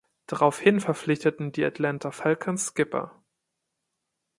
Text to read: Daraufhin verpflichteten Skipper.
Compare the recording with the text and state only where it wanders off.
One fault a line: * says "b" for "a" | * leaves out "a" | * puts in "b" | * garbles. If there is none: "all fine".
* puts in "die Atlanta Falcons"